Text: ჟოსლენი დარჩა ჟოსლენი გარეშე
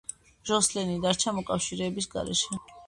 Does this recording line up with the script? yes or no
no